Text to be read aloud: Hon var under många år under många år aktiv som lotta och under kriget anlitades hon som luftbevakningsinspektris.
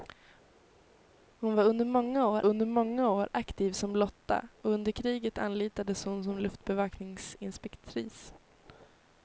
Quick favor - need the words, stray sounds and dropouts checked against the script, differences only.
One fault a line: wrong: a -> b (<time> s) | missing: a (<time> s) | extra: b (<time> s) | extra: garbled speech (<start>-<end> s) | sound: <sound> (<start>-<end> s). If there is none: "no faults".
no faults